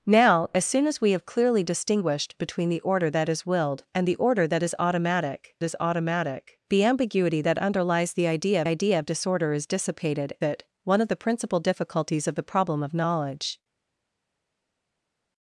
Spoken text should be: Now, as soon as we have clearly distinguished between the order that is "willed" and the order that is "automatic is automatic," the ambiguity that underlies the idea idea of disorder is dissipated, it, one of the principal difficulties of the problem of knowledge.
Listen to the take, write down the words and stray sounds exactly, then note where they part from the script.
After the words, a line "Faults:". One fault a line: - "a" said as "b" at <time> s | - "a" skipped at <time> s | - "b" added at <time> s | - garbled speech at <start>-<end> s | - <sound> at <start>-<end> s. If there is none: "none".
Now, as soon as we have clearly distinguished between the order that is "willed" and the order that is "automatic is automatic," the ambiguity that underlies the idea idea of disorder is dissipated, it, one of the principal difficulties of the problem of knowledge.
Faults:
none